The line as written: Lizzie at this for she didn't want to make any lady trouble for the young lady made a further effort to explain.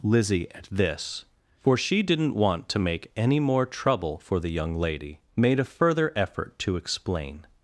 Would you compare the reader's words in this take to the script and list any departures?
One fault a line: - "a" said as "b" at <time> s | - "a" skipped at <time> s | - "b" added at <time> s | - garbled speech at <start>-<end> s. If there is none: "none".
- "lady" said as "more" at 3.4 s